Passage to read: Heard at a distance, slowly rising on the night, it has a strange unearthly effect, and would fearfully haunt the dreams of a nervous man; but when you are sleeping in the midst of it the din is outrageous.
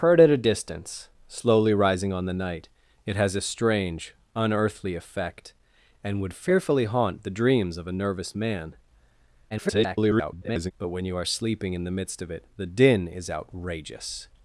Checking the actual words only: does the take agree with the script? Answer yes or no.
no